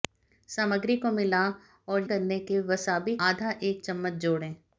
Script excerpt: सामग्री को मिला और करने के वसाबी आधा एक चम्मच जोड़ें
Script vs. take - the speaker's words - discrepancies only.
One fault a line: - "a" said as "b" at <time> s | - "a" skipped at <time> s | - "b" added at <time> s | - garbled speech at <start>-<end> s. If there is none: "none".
none